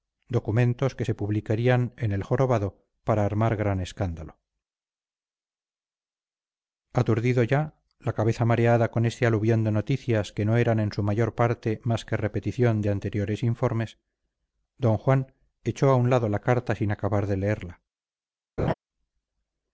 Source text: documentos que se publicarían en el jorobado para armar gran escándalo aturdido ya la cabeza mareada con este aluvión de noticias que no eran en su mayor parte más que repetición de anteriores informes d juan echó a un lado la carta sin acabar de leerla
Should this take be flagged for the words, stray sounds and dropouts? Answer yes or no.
yes